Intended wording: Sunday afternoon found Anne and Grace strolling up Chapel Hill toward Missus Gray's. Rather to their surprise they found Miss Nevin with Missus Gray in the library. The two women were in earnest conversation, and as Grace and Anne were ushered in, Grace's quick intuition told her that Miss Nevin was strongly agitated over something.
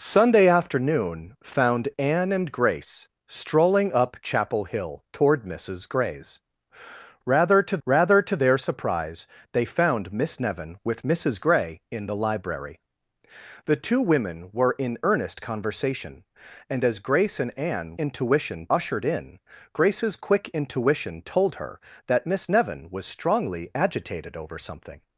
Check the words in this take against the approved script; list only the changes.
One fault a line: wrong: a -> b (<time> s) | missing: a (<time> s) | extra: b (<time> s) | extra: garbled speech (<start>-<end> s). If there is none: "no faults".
extra: rather to (7.8 s)
wrong: were -> intuition (17.9 s)